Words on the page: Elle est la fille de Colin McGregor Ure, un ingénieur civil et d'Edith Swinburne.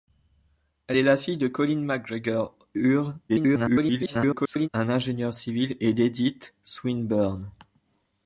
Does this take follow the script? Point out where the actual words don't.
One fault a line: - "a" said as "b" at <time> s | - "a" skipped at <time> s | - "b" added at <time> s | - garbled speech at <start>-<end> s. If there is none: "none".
- garbled speech at 3.3-4.7 s